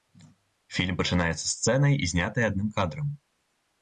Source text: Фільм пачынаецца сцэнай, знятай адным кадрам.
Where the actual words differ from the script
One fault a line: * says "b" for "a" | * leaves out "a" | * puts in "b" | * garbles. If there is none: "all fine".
all fine